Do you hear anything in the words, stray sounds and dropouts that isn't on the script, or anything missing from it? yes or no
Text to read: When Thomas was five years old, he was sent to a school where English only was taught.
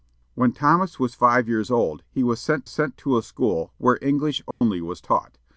yes